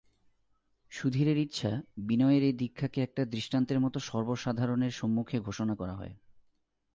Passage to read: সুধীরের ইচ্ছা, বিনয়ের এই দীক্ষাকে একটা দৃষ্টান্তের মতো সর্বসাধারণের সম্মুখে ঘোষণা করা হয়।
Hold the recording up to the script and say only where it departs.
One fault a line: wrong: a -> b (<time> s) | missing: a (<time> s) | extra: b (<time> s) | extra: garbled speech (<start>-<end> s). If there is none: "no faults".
no faults